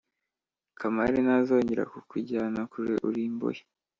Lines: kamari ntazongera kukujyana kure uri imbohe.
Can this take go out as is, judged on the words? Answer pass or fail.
pass